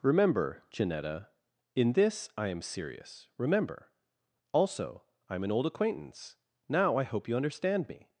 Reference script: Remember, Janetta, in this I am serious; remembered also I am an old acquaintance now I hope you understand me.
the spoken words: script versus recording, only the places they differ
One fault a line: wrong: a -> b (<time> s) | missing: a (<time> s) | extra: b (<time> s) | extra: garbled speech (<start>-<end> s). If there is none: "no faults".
wrong: remembered -> remember (3.4 s)